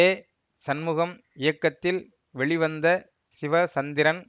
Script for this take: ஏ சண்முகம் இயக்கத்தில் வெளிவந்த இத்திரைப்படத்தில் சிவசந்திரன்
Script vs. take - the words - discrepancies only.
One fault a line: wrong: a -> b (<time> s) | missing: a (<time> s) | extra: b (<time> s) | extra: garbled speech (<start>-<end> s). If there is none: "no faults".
missing: இத்திரைப்படத்தில் (2.9 s)